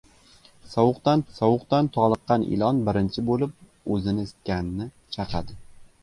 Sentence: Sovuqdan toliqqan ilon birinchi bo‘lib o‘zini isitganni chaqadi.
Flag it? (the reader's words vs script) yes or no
yes